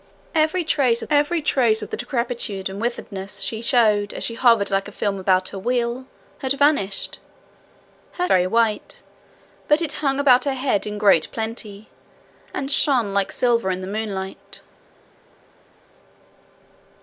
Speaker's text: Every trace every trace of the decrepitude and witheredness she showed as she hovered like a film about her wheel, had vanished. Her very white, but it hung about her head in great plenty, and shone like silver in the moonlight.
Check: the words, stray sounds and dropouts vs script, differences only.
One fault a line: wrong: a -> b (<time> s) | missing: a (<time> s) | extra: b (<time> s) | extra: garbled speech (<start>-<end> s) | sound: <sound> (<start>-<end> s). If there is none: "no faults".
no faults